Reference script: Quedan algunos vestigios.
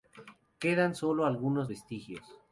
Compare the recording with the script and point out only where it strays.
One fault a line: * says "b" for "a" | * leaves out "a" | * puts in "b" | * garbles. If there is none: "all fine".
* puts in "sólo"